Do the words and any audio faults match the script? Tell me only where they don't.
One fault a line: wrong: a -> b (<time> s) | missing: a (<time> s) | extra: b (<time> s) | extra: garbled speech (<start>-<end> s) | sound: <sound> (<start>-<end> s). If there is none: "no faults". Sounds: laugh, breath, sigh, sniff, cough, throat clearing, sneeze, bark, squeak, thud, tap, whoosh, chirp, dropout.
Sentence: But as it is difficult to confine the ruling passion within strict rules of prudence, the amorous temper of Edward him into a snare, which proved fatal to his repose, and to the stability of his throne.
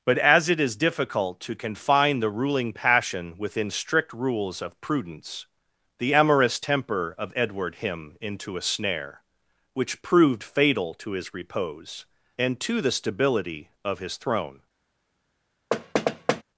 sound: thud (15.7-16.4 s)